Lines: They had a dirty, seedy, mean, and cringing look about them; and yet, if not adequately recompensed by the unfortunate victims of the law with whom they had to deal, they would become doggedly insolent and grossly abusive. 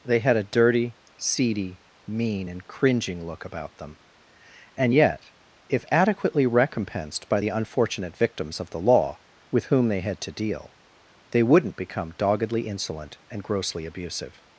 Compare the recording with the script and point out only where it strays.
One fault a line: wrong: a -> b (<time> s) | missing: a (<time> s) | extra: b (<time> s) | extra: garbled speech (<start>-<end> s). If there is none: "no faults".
missing: not (5.8 s)
wrong: would -> wouldn't (11.4 s)